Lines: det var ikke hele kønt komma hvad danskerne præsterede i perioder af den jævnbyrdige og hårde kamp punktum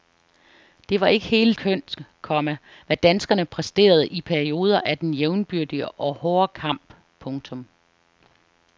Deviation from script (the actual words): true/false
false